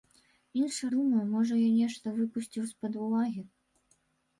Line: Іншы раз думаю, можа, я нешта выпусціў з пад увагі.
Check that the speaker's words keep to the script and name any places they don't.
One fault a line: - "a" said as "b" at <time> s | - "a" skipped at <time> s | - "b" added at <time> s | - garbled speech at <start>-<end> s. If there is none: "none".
- "раз" skipped at 0.9 s